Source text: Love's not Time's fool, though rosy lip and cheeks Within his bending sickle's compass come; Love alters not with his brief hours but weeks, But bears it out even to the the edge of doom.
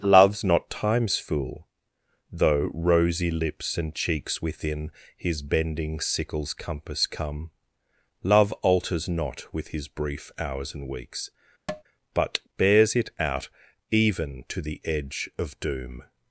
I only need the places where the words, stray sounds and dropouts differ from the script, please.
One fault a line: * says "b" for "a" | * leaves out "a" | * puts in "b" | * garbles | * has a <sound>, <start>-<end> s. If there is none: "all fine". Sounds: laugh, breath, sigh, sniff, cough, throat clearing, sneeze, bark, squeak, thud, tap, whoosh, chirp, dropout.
* says "lips" for "lip"
* says "and" for "but"
* has a tap, 11.7-11.8 s
* leaves out "the"